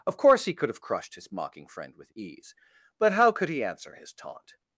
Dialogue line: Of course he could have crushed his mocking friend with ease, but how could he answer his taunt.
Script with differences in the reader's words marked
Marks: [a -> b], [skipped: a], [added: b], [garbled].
Of course he could have crushed his mocking friend with ease, but how could he answer his taunt.